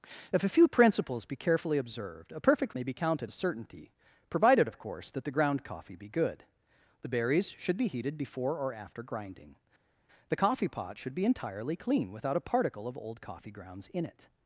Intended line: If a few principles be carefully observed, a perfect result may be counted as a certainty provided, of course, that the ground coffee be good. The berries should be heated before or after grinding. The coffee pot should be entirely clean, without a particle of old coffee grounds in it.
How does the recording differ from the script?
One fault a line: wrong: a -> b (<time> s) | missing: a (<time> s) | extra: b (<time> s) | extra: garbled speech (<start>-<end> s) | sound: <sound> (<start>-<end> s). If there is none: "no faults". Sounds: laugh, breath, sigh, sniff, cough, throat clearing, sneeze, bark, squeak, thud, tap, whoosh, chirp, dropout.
missing: result (2.7 s)
missing: as (3.3 s)